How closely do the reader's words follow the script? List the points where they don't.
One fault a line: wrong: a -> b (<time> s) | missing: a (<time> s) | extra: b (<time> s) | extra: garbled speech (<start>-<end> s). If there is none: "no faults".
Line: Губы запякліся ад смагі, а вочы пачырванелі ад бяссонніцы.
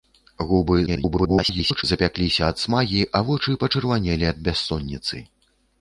extra: garbled speech (0.9-1.8 s)